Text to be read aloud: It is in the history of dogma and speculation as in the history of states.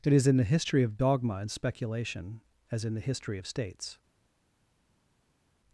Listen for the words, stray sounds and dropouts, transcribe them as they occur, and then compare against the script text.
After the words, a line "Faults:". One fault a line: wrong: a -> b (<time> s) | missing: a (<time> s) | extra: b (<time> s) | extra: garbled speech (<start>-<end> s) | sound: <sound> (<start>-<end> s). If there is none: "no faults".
It is in the history of dogma and speculation as in the history of states.
Faults:
no faults